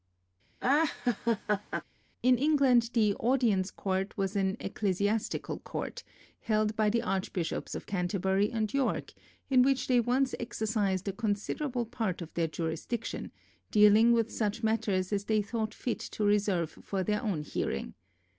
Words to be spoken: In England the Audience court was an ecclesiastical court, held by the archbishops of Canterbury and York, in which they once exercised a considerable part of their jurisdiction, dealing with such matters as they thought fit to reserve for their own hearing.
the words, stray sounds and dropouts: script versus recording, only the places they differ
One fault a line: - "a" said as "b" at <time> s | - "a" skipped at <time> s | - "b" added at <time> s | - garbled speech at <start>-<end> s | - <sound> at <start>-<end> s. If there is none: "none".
- laugh at 0.6-1.8 s